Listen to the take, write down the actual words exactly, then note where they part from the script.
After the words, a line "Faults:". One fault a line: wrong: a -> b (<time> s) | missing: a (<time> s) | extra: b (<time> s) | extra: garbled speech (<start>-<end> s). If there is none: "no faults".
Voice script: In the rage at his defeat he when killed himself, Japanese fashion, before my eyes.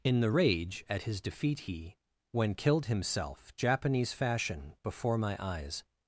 In the rage at his defeat he when killed himself, Japanese fashion, before my eyes.
Faults:
no faults